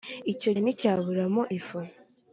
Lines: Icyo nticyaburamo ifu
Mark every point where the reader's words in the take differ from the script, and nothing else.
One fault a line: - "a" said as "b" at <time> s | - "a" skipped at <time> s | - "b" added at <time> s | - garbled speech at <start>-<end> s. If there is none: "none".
none